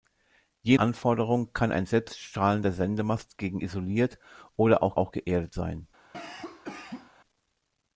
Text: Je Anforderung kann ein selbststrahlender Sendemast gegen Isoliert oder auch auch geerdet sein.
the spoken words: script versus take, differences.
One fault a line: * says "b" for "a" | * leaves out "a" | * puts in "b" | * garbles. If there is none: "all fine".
all fine